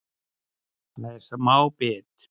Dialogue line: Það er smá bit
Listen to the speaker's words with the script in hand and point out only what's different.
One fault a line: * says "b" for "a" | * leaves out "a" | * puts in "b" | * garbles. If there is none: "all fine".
all fine